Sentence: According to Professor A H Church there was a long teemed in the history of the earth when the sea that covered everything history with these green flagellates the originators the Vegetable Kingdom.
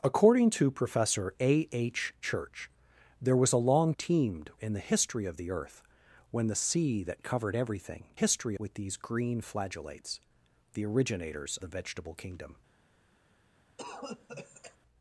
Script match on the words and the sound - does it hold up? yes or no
no